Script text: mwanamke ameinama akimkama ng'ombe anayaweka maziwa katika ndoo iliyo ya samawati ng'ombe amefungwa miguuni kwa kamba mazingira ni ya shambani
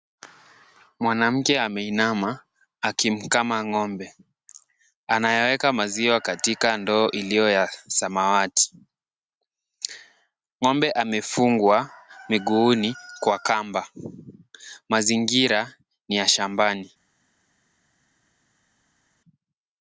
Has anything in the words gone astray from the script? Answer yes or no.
no